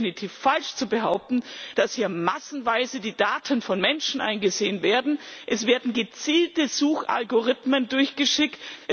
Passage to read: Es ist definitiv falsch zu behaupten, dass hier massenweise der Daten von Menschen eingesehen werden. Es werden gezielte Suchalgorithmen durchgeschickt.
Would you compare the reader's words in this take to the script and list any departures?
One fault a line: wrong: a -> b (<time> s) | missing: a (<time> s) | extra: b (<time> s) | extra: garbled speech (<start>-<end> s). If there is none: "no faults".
wrong: der -> die (3.0 s)